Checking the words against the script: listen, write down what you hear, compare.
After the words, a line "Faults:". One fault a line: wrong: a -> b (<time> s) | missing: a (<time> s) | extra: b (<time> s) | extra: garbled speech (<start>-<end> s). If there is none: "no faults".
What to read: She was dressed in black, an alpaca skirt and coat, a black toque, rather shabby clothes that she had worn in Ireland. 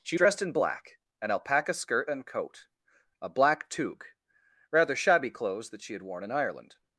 She dressed in black, an alpaca skirt and coat, a black toque, rather shabby clothes that she had worn in Ireland.
Faults:
missing: was (0.2 s)